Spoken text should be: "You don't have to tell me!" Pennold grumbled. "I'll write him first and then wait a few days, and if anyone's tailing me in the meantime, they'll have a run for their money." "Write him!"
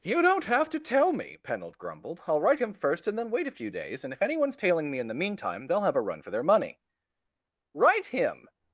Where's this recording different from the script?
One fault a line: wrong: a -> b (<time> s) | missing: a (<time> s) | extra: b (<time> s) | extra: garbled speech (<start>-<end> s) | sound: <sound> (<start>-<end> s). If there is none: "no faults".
no faults